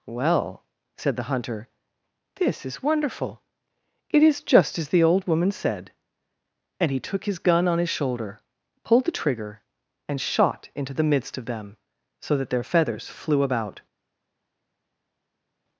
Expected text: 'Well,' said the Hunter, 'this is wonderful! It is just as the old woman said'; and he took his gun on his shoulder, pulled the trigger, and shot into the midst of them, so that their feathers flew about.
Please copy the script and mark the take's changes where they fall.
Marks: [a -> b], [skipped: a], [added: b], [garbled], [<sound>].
'Well,' said the Hunter, 'this is wonderful! It is just as the old woman said'; and he took his gun on his shoulder, pulled the trigger, and shot into the midst of them, so that their feathers flew about.